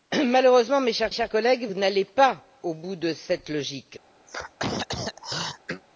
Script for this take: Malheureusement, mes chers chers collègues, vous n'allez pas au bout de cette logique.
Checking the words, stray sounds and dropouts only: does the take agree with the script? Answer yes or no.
no